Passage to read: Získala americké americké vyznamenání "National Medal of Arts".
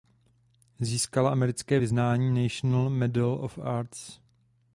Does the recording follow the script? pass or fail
fail